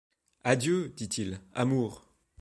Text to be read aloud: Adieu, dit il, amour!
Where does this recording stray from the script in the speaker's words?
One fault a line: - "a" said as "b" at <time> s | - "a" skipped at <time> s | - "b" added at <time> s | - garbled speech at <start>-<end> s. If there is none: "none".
none